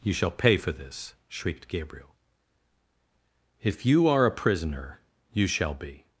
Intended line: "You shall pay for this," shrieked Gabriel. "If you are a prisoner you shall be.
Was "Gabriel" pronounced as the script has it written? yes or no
yes